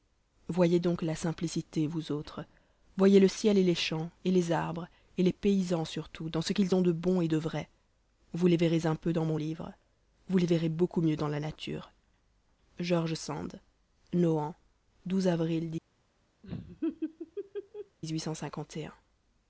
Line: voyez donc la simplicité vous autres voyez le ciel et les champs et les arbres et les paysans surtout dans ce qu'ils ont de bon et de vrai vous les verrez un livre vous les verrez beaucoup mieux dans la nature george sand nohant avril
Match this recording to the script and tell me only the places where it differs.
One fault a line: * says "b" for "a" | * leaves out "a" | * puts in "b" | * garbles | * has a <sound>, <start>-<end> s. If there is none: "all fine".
* puts in "peu dans mon"
* has a laugh, 16.4-18.0 s